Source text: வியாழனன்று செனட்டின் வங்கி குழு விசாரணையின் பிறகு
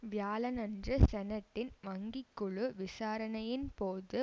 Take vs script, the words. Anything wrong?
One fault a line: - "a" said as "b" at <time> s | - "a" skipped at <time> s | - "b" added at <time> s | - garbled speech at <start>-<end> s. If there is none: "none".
- "பிறகு" said as "போது" at 3.8 s